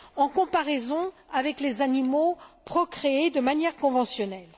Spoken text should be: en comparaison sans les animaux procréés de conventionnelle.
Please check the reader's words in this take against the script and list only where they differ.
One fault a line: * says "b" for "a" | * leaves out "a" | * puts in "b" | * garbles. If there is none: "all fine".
* says "avec" for "sans"
* puts in "manière"